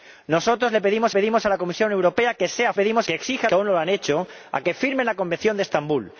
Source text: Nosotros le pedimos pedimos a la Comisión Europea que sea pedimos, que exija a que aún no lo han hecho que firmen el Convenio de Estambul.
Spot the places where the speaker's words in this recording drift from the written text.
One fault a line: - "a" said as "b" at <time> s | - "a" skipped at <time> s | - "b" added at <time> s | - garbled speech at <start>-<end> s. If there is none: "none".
none